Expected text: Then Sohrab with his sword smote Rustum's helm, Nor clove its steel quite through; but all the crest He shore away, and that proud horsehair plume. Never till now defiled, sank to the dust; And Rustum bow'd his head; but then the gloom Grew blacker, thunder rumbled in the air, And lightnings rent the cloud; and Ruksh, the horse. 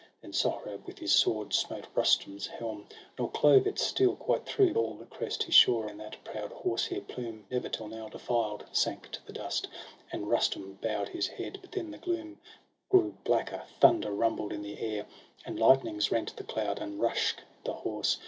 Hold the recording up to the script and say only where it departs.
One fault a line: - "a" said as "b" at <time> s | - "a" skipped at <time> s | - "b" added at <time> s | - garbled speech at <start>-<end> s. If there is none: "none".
- "but" skipped at 4.7 s
- "away" skipped at 5.9 s